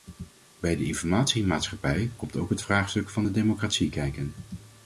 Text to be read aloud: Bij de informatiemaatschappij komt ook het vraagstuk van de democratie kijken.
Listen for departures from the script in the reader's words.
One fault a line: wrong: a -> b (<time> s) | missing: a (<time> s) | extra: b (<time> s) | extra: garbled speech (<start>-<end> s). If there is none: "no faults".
no faults